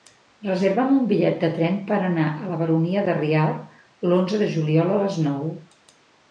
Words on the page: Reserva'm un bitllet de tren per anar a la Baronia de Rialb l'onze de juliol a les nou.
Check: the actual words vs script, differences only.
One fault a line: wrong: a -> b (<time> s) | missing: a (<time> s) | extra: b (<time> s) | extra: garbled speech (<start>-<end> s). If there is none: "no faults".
no faults